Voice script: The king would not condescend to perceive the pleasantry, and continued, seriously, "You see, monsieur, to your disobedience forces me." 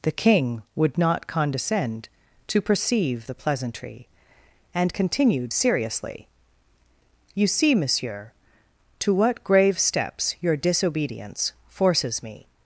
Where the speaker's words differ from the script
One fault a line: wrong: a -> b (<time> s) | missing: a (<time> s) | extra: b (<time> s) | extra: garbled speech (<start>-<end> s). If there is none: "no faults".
extra: what grave steps (9.1 s)